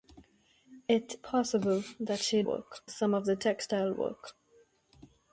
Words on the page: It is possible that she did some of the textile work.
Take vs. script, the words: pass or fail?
fail